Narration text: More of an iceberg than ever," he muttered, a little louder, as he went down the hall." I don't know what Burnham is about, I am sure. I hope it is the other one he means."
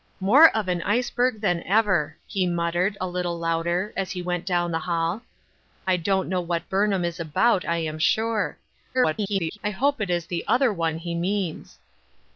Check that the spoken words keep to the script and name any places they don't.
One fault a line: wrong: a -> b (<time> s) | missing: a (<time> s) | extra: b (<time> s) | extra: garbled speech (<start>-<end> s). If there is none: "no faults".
extra: garbled speech (8.9-9.6 s)